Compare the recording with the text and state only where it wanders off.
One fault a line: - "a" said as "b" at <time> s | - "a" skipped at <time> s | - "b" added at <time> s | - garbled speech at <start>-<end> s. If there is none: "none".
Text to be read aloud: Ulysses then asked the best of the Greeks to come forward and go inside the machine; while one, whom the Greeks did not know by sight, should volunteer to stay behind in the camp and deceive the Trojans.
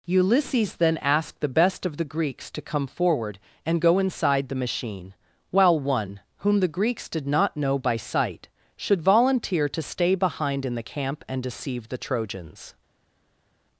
none